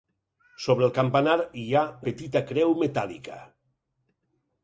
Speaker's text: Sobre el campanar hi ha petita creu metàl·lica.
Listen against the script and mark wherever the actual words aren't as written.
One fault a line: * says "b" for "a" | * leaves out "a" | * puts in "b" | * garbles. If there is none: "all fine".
all fine